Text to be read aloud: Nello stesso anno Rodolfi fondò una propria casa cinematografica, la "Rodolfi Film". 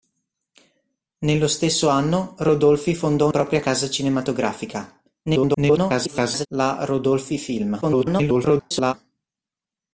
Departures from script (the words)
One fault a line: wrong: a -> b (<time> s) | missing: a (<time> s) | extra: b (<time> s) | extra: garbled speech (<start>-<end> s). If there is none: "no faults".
missing: una (3.3 s)
extra: garbled speech (5.2-6.5 s)
extra: garbled speech (7.8-8.9 s)